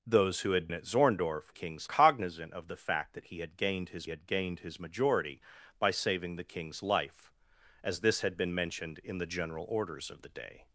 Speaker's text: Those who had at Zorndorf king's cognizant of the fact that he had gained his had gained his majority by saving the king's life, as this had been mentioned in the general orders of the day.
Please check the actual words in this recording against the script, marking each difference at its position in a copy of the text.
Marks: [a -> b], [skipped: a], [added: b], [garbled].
Those who had at Zorndorf king's cognizant of the fact that he had gained his had gained his majority by saving the king's life, as this had been mentioned in the general orders of the day.